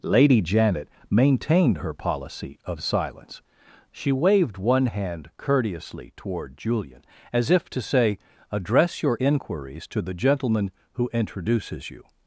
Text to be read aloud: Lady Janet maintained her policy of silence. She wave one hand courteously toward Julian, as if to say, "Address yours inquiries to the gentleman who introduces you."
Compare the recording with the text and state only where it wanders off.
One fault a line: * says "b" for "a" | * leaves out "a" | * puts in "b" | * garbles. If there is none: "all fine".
* says "waved" for "wave"
* says "your" for "yours"